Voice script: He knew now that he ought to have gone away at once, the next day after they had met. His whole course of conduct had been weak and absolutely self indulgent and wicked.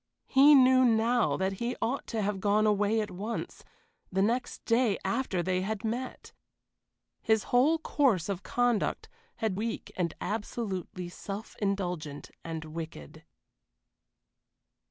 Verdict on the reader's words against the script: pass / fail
fail